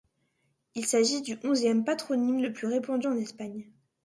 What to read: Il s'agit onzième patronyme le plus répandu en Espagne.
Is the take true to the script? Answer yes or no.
no